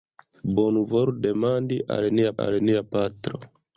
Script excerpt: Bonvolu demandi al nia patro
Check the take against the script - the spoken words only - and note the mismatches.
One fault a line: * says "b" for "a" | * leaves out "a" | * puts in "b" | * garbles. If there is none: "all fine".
* puts in "al nia"